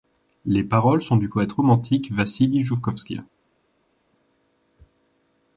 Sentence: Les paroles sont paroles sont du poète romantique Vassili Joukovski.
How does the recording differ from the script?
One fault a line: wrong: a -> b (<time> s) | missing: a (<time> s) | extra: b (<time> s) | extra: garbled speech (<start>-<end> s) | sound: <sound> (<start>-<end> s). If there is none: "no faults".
missing: paroles sont (1.1 s)